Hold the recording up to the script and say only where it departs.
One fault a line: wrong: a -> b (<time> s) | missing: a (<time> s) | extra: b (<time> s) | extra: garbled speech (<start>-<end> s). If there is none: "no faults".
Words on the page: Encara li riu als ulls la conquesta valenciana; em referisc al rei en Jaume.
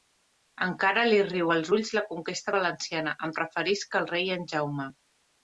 no faults